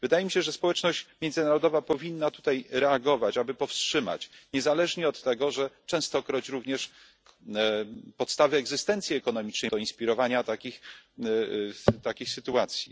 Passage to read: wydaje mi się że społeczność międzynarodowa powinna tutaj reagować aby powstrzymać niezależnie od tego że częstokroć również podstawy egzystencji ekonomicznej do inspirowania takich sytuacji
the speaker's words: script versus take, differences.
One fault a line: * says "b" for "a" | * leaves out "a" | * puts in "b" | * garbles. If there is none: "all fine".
all fine